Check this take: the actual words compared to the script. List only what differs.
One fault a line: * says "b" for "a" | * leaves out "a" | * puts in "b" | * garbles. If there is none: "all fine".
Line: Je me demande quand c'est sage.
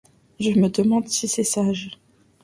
* says "si" for "quand"